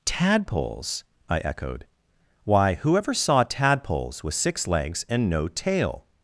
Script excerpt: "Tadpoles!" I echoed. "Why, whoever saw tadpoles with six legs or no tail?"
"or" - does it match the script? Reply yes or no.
no